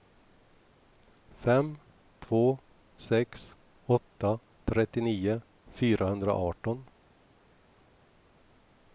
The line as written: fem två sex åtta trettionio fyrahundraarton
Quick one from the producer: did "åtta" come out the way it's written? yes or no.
yes